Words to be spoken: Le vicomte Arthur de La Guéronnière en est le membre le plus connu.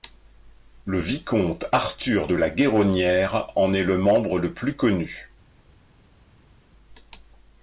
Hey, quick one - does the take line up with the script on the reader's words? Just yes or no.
yes